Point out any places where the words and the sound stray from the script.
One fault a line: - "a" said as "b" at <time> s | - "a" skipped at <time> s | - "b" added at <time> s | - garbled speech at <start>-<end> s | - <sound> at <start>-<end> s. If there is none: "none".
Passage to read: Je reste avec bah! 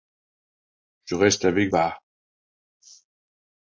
none